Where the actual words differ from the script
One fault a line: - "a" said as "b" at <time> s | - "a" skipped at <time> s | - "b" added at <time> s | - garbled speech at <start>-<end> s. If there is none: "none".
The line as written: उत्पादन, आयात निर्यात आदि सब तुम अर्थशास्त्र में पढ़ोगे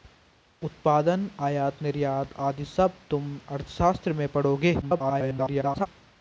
- garbled speech at 4.8-5.9 s